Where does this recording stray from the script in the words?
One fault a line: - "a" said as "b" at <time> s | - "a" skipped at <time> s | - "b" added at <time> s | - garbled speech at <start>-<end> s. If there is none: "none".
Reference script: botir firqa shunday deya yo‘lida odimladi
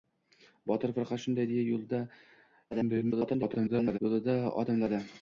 - garbled speech at 2.7-4.0 s